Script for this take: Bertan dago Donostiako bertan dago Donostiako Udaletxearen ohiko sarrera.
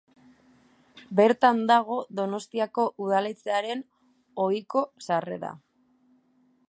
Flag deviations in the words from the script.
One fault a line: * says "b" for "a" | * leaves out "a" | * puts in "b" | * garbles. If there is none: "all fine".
* leaves out "bertan dago Donostiako"